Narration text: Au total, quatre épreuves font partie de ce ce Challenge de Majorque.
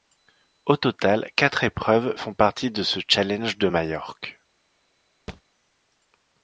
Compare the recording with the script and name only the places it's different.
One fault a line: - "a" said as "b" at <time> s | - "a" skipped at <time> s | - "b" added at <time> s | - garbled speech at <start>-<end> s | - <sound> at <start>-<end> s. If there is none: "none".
- "ce" skipped at 3.0 s
- thud at 5.3-5.4 s